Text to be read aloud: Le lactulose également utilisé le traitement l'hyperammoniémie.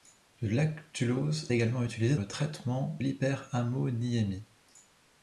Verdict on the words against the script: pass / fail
pass